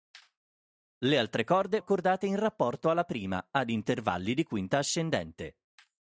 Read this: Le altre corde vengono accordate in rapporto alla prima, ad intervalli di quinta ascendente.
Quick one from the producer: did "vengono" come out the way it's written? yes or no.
no